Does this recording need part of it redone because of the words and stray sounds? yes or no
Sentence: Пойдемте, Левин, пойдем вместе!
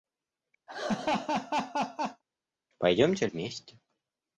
yes